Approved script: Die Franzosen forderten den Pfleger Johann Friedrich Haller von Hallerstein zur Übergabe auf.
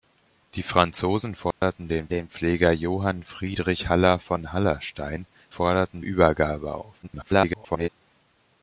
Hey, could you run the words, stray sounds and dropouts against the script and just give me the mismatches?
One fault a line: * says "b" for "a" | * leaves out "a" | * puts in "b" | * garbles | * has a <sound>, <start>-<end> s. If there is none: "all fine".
* has a dropout, 1.5-1.6 s
* puts in "den"
* says "forderten" for "zur"
* garbles